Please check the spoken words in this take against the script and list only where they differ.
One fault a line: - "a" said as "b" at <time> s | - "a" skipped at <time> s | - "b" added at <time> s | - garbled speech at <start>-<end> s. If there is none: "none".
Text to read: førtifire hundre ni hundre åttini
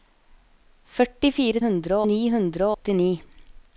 none